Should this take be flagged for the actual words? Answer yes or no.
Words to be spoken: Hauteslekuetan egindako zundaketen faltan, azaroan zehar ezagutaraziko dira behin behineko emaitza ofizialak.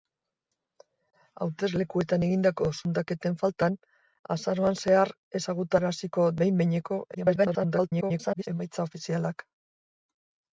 yes